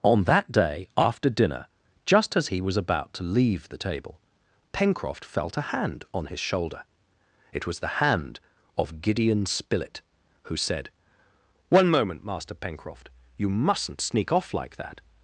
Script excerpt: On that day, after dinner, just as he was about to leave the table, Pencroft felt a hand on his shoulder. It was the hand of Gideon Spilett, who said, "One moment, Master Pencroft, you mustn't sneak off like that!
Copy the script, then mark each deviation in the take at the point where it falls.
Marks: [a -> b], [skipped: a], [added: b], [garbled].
On that day, after dinner, just as he was about to leave the table, Pencroft felt a hand on his shoulder. It was the hand of Gideon Spilett, who said, "One moment, Master Pencroft, you mustn't sneak off like that!